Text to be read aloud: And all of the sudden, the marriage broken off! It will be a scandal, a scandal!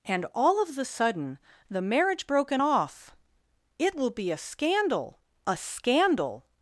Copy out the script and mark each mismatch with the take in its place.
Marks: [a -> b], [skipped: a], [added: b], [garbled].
And all of the sudden, the marriage broken off! It will be a scandal, a scandal!